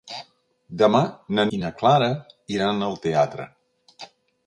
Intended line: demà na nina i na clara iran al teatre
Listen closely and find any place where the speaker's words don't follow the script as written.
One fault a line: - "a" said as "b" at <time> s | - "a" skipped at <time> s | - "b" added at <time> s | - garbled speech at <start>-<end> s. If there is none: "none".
- "nina" skipped at 1.4 s